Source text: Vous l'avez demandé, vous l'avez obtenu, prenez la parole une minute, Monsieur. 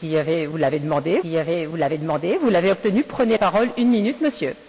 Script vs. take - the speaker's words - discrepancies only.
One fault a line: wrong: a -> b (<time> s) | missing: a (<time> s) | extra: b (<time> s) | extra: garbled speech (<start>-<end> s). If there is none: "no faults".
extra: demandé vous l'avez (2.0 s)
missing: la (3.4 s)